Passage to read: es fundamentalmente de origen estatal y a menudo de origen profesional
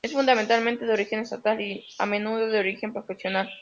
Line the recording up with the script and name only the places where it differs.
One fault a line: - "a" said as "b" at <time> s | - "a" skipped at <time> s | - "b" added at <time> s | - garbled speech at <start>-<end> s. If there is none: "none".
none